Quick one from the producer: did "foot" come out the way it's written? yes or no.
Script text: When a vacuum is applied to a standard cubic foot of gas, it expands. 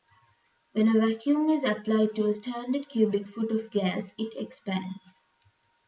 yes